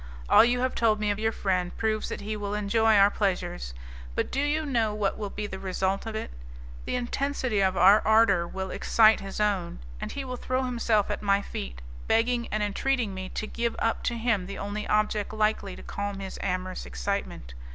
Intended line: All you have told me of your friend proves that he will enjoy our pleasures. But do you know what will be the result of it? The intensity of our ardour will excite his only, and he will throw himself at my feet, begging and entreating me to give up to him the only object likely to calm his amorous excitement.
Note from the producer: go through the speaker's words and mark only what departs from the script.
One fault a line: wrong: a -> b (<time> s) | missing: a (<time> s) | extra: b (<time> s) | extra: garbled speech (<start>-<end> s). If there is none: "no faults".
wrong: only -> own (9.4 s)